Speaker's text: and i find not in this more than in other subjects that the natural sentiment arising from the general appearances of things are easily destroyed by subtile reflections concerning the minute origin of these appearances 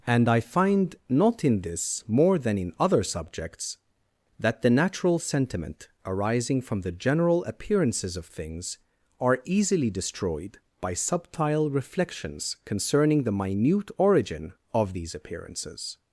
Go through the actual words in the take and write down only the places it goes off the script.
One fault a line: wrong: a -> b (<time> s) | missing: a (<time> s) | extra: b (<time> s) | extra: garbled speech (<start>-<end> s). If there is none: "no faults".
no faults